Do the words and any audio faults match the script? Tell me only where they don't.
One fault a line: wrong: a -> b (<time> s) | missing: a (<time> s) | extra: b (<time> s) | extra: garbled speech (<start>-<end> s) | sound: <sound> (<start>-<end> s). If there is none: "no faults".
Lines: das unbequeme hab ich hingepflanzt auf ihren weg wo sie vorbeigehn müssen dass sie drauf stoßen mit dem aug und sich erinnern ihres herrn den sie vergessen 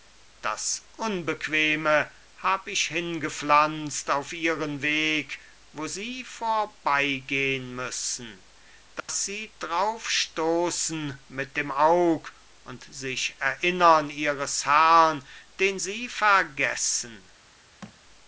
sound: dropout (9.0-9.1 s)
sound: thud (17.8-18.0 s)